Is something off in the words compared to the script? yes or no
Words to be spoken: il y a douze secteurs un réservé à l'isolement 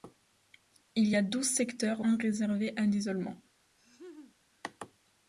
no